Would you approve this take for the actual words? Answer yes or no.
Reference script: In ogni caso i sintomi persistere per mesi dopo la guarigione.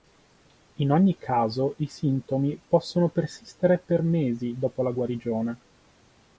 no